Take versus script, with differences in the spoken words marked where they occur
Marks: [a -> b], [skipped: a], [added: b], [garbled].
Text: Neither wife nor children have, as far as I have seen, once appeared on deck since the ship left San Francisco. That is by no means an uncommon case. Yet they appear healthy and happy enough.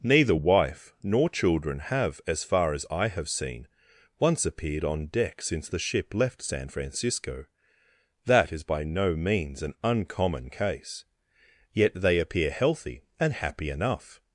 Neither wife nor children have, as far as I have seen, once appeared on deck since the ship left San Francisco. That is by no means an uncommon case. Yet they appear healthy and happy enough.